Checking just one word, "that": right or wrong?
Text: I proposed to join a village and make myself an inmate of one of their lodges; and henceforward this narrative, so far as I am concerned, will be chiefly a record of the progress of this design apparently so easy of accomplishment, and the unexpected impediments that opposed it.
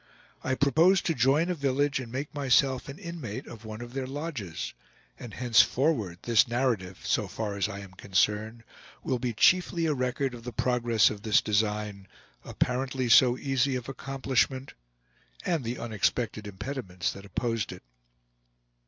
right